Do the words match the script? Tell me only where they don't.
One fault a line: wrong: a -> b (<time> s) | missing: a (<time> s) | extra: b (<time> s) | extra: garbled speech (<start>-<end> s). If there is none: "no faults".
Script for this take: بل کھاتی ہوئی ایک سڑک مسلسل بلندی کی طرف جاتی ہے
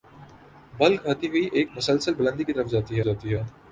missing: سڑک (1.7 s)
extra: جاتی (3.0 s)